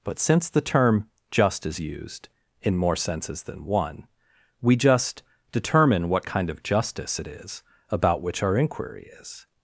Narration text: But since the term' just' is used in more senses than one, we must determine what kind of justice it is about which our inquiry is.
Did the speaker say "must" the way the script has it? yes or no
no